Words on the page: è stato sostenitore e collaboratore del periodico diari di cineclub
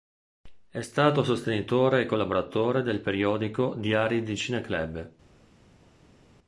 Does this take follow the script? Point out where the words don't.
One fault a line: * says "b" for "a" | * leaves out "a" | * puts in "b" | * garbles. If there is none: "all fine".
all fine